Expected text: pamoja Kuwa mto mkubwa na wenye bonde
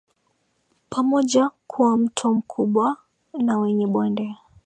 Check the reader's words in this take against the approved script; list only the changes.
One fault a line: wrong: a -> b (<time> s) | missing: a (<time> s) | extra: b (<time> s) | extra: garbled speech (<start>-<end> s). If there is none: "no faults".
no faults